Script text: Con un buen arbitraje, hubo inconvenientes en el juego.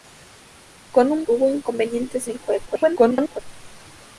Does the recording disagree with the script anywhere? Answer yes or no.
yes